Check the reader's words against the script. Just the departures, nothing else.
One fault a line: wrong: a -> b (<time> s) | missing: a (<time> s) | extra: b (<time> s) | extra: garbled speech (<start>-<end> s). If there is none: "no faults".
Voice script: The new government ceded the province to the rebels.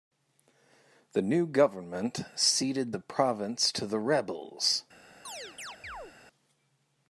no faults